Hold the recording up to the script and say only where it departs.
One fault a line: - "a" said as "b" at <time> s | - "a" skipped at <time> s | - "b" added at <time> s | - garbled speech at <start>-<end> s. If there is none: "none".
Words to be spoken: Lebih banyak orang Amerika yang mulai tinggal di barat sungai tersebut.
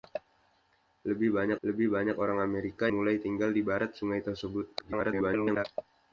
- "lebih banyak" added at 1.6 s
- "yang" skipped at 2.9 s
- garbled speech at 4.8-5.7 s